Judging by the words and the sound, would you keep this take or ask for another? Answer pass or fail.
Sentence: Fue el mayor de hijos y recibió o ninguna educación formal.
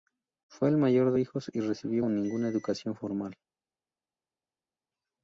pass